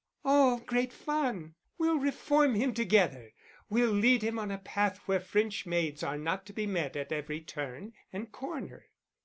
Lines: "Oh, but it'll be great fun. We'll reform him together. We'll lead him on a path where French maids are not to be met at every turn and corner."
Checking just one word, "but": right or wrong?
wrong